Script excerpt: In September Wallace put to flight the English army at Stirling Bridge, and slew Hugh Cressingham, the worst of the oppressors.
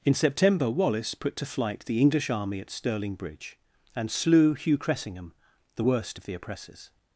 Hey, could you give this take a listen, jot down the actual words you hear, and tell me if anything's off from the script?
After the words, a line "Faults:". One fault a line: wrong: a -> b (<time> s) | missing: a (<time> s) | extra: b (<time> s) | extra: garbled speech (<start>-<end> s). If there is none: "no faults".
In September Wallace put to flight the English army at Stirling Bridge, and slew Hugh Cressingham, the worst of the oppressors.
Faults:
no faults